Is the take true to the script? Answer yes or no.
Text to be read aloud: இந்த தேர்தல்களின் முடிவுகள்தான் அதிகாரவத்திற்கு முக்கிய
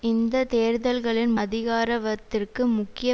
no